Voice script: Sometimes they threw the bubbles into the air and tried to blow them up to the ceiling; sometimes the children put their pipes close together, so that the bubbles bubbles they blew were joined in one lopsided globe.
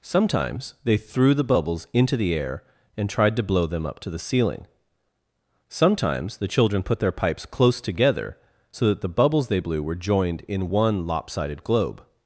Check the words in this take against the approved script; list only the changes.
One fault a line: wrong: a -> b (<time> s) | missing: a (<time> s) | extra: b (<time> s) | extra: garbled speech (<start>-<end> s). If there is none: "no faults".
missing: bubbles (9.5 s)